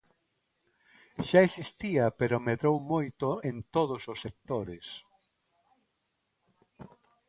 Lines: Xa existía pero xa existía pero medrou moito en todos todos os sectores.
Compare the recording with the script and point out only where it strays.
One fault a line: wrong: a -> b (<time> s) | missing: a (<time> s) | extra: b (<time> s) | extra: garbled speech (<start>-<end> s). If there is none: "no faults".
missing: xa existía pero (2.4 s)
missing: todos (4.0 s)